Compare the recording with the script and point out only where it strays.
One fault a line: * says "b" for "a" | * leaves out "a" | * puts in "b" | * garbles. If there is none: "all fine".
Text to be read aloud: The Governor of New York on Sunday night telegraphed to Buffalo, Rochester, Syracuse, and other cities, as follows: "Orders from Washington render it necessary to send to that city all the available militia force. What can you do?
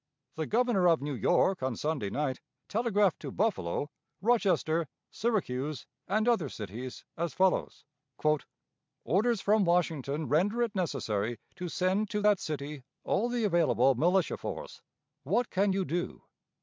all fine